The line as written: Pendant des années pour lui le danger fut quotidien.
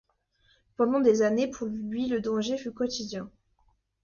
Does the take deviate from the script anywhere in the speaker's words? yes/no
no